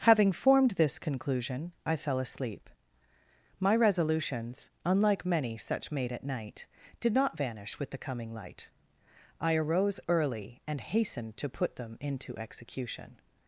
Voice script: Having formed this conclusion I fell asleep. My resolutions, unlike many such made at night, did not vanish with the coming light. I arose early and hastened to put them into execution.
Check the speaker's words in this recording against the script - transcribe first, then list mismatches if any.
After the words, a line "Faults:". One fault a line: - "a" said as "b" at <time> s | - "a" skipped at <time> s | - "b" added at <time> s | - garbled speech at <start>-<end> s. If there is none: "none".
Having formed this conclusion I fell asleep. My resolutions, unlike many such made at night, did not vanish with the coming light. I arose early and hastened to put them into execution.
Faults:
none